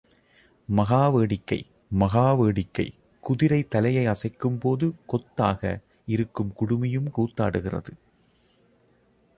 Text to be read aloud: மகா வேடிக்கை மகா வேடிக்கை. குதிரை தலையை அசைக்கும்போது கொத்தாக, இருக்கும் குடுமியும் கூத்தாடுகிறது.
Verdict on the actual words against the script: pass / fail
pass